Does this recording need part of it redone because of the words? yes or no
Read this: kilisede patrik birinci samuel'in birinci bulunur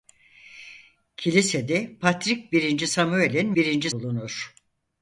no